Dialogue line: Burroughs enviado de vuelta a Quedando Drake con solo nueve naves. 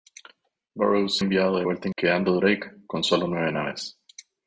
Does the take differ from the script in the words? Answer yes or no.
no